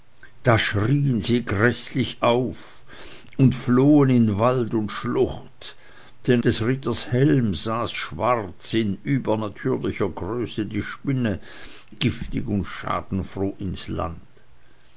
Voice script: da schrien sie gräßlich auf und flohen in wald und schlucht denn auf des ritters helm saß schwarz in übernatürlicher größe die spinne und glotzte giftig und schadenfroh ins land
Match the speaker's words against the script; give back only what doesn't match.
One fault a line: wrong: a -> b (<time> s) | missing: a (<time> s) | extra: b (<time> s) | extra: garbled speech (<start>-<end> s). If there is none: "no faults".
missing: auf (6.4 s)
missing: und glotzte (11.4 s)